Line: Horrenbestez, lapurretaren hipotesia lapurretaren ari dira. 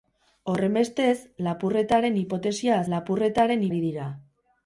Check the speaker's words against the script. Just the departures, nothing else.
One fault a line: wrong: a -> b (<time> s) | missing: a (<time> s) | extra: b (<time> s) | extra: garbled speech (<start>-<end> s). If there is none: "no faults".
no faults